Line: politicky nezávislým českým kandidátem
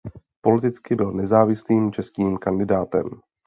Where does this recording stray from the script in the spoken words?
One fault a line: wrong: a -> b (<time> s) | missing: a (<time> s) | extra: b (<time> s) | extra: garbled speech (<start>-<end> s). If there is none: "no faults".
extra: byl (0.9 s)